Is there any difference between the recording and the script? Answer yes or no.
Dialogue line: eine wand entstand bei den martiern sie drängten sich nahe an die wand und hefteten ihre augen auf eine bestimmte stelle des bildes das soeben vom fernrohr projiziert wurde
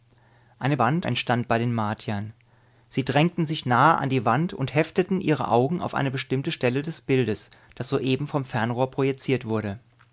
no